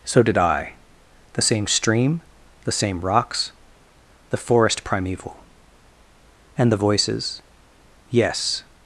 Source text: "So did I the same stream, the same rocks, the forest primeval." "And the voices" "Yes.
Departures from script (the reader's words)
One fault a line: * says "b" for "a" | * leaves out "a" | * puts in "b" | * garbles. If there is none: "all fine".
all fine